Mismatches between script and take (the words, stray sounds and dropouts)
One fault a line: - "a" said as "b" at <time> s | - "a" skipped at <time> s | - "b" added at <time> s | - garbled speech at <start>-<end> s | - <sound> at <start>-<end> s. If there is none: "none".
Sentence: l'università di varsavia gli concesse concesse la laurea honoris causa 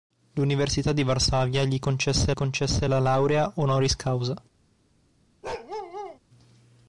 - bark at 5.4-6.2 s